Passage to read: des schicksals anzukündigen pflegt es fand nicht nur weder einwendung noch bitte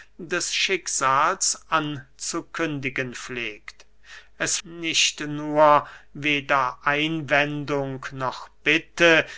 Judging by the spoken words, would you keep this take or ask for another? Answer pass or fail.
fail